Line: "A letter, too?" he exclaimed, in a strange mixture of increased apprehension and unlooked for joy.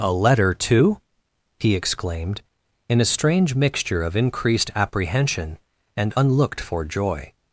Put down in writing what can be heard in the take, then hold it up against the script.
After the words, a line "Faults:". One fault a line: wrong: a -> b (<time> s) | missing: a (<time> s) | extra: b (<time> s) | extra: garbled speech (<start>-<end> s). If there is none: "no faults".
"A letter, too?" he exclaimed, in a strange mixture of increased apprehension and unlooked for joy.
Faults:
no faults